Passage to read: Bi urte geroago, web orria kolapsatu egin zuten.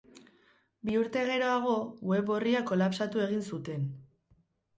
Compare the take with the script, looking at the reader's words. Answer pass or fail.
pass